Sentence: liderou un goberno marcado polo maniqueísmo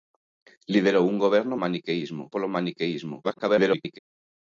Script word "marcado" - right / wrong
wrong